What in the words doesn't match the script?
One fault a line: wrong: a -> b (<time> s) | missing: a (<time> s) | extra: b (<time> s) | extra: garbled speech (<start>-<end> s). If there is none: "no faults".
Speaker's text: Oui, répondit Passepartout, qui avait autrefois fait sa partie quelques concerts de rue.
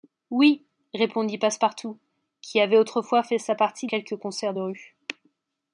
no faults